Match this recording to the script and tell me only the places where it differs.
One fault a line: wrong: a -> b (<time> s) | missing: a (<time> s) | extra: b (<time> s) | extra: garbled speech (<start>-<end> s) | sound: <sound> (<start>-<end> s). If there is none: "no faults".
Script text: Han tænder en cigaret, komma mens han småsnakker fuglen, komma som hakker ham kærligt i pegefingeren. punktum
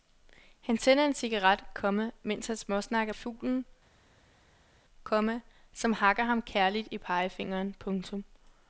no faults